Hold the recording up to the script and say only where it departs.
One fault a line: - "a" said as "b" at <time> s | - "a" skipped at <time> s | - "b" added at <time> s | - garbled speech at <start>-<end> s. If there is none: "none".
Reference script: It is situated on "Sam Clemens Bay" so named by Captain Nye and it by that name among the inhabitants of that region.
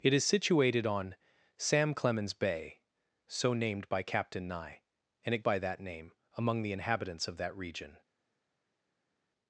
none